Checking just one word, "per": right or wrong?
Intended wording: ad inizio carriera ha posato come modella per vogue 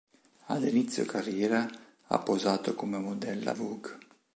wrong